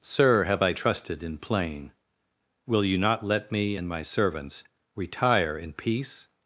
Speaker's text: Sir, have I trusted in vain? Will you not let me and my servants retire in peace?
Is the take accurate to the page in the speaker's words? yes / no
no